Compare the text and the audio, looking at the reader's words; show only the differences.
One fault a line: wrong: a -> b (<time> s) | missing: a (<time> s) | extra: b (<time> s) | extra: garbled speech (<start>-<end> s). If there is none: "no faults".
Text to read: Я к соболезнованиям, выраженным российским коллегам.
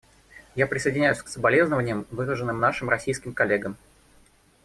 extra: присоединяюсь (0.7 s)
extra: нашим (2.6 s)